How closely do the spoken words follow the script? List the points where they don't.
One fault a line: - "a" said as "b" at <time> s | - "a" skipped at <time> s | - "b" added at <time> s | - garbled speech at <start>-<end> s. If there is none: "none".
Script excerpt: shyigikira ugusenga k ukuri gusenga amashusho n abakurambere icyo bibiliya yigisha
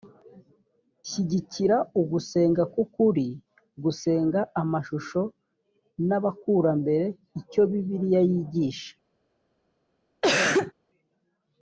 none